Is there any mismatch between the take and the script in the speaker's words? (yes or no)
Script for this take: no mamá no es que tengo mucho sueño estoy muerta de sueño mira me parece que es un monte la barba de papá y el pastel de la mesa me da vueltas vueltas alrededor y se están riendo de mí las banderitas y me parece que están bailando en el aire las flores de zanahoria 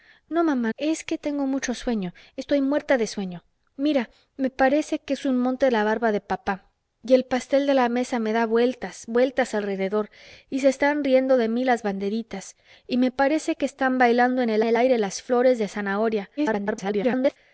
yes